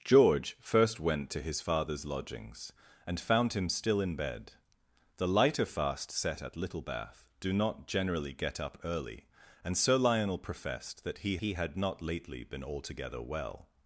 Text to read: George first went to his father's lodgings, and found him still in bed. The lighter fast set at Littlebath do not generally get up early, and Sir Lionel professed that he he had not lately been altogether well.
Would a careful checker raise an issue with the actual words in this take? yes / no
no